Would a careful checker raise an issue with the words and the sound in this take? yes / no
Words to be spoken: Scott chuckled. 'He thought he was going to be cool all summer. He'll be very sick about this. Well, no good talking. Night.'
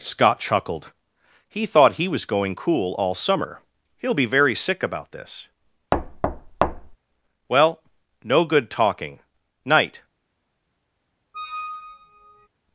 yes